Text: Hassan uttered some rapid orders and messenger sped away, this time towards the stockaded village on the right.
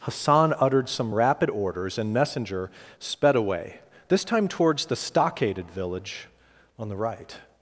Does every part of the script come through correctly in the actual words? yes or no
yes